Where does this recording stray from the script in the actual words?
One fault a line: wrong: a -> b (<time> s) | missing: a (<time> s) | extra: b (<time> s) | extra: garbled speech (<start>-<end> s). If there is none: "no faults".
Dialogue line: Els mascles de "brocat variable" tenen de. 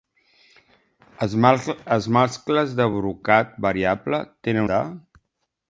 no faults